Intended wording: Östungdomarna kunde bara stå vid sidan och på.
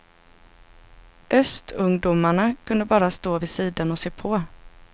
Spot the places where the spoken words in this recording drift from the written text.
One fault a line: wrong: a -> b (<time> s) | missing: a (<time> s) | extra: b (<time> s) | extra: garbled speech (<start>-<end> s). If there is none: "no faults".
extra: se (4.0 s)